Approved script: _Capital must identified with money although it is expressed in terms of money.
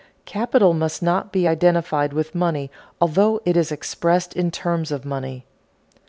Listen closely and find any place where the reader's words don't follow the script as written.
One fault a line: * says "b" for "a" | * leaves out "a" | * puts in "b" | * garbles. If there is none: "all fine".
* puts in "not be"